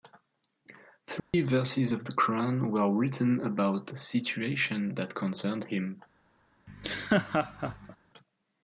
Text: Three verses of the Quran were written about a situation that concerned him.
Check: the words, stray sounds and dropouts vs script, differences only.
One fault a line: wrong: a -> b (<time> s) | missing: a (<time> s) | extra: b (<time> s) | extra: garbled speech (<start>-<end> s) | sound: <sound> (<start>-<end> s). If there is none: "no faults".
sound: dropout (1.2-1.3 s)
sound: laugh (6.7-8.0 s)